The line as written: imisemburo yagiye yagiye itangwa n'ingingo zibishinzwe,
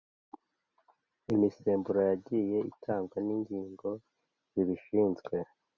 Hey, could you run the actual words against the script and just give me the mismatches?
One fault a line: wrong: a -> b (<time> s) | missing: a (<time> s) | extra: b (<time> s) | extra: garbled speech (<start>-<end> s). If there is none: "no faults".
missing: yagiye (2.6 s)